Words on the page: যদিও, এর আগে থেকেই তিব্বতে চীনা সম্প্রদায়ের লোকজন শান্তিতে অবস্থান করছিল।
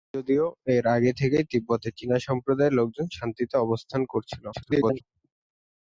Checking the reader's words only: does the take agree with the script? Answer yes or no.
no